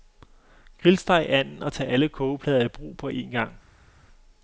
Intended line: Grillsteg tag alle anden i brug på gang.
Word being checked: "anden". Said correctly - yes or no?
no